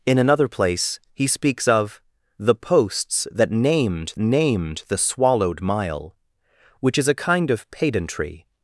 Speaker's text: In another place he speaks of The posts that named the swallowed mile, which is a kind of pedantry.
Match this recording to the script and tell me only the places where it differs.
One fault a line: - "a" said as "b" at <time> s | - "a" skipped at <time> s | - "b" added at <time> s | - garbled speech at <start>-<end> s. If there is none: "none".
- "named" added at 4.2 s